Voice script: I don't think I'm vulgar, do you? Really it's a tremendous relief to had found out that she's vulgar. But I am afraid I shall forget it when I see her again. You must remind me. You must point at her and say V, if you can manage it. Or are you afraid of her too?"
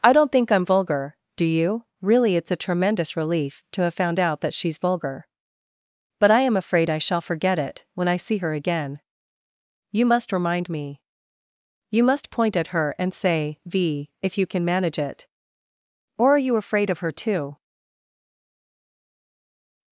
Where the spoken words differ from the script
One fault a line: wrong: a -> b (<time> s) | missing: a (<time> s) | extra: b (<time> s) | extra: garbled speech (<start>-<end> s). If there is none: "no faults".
wrong: had -> have (3.8 s)